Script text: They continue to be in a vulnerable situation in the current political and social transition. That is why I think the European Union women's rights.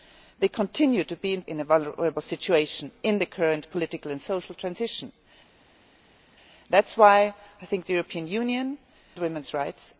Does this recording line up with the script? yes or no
yes